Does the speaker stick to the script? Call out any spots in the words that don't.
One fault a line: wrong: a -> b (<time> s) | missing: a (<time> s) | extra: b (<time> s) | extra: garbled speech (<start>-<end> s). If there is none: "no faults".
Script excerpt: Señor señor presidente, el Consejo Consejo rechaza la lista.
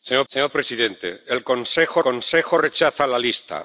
no faults